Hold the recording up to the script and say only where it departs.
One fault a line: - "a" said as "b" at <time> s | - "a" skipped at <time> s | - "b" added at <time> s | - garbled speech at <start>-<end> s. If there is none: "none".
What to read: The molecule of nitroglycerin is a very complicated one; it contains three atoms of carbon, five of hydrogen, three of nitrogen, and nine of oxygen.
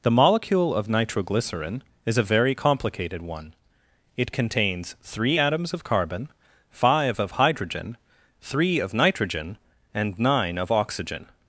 none